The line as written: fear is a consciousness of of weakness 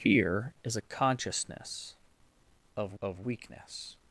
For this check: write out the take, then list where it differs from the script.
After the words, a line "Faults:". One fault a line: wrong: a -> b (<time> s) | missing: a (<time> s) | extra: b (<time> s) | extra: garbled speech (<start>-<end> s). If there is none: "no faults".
fear is a consciousness of of weakness
Faults:
no faults